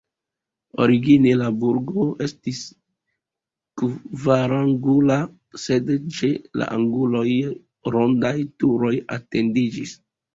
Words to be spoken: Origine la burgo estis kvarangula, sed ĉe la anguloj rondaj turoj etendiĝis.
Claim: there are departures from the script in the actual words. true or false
false